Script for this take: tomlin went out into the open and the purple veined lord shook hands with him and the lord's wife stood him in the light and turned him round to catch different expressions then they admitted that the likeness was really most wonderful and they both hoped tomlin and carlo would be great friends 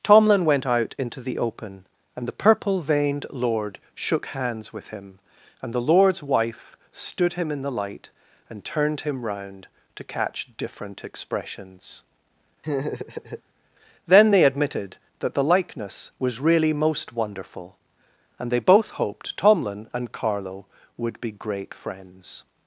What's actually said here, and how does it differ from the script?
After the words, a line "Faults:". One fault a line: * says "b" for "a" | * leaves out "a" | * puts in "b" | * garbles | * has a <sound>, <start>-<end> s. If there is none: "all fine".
tomlin went out into the open and the purple veined lord shook hands with him and the lord's wife stood him in the light and turned him round to catch different expressions then they admitted that the likeness was really most wonderful and they both hoped tomlin and carlo would be great friends
Faults:
* has a laugh, 12.6-13.4 s